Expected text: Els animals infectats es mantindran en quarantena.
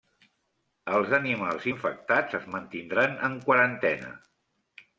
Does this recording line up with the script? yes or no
yes